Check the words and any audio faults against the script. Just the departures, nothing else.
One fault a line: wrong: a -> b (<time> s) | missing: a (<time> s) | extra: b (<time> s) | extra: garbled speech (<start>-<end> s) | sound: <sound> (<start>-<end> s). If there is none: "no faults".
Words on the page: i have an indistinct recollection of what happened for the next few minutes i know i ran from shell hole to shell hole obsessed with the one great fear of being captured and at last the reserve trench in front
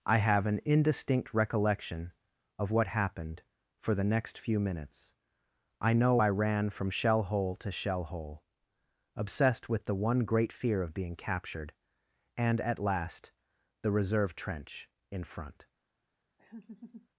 sound: laugh (16.4-17.1 s)